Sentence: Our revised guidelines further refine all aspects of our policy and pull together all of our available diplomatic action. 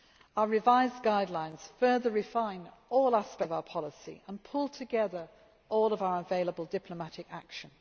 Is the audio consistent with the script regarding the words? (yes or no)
yes